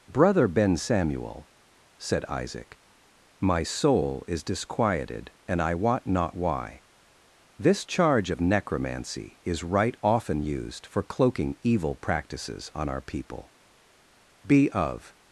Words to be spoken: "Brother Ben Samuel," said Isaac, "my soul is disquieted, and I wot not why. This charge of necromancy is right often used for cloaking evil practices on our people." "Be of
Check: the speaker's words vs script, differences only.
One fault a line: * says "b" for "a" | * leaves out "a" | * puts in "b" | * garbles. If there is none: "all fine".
all fine